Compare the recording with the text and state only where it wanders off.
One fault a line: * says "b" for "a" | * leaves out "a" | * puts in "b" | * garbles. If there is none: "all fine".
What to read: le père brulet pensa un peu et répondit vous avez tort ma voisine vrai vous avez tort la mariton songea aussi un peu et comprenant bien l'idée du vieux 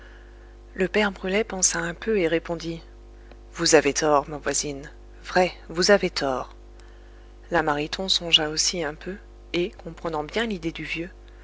all fine